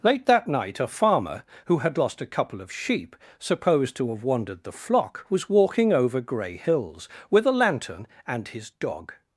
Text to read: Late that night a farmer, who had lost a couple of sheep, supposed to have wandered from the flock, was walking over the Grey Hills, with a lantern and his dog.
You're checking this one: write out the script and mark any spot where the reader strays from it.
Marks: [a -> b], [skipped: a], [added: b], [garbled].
Late that night a farmer, who had lost a couple of sheep, supposed to have wandered [skipped: from] the flock, was walking over [skipped: the] Grey Hills, with a lantern and his dog.